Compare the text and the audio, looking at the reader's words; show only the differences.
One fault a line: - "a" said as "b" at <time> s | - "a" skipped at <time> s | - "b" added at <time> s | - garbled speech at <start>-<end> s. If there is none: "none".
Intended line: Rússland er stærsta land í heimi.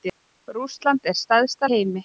- "land" skipped at 1.7 s